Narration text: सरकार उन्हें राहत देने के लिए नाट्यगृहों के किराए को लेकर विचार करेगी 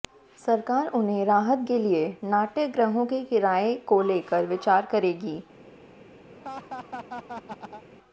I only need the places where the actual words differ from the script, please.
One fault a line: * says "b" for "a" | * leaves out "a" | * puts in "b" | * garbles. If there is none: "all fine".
* leaves out "देने"